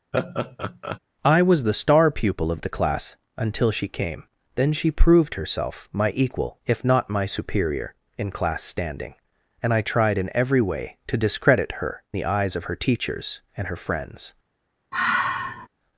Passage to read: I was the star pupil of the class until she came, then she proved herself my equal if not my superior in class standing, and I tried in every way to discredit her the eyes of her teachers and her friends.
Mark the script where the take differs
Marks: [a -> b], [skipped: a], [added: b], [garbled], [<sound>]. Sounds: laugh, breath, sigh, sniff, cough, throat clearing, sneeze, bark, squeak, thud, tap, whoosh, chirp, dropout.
[laugh] I was the star pupil of the class until she came, then she proved herself my equal if not my superior in class standing, and I tried in every way to discredit her the eyes of her teachers and her friends. [sigh]